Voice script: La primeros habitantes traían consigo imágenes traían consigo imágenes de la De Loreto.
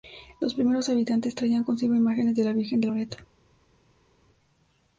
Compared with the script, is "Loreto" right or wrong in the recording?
right